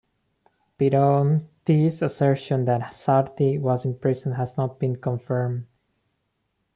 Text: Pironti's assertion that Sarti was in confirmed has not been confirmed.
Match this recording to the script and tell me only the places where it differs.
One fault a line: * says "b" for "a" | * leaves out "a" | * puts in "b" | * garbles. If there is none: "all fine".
* says "prison" for "confirmed"